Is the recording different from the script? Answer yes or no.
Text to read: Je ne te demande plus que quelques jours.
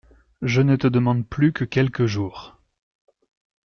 no